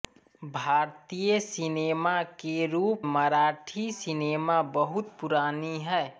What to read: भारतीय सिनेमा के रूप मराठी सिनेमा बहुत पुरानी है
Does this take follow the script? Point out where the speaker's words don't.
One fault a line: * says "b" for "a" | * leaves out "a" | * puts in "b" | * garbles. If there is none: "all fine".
all fine